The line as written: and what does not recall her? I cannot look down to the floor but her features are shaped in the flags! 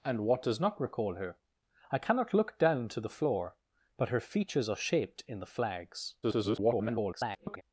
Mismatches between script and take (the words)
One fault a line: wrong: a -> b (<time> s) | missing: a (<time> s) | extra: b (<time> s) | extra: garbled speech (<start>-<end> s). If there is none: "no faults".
extra: garbled speech (6.2-7.6 s)